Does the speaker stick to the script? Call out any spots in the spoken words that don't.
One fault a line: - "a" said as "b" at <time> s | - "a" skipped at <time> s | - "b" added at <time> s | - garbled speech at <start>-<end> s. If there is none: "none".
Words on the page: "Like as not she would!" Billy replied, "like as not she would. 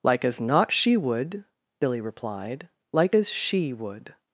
- "not" skipped at 3.3 s